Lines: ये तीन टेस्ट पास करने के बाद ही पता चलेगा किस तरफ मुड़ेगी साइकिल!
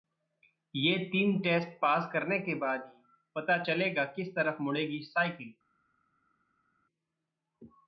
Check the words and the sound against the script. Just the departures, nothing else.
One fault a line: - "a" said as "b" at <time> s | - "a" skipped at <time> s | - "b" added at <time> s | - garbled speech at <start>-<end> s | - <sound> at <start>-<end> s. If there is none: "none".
none